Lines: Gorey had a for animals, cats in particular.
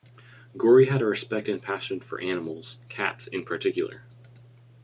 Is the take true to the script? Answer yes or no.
no